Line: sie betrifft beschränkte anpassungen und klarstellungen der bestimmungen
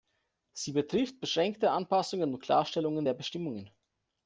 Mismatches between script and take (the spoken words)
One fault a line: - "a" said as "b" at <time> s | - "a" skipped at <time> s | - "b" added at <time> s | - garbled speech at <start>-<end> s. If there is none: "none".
none